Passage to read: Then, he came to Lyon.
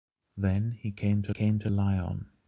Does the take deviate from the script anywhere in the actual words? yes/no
yes